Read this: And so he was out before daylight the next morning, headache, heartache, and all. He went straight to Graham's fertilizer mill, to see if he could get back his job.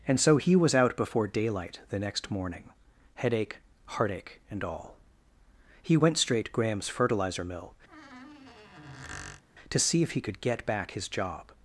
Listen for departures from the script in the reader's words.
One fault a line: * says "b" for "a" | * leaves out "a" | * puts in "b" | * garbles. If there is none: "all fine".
* leaves out "to"